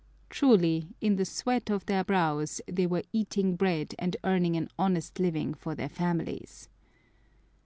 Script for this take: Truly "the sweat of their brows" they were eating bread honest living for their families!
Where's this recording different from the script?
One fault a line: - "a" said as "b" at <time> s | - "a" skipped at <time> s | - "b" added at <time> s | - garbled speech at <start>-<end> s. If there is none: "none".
- "in" added at 1.0 s
- "and earning an" added at 4.0 s